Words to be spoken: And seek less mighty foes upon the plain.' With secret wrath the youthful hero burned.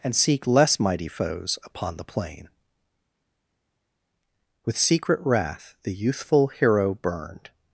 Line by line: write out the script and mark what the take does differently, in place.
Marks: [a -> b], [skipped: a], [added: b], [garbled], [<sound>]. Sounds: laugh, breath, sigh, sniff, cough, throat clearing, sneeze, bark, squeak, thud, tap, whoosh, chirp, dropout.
And seek less mighty foes upon the plain.' With secret wrath the youthful hero burned.